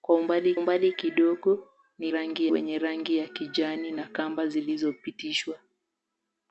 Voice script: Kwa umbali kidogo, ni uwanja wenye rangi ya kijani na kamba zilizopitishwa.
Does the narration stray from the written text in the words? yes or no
yes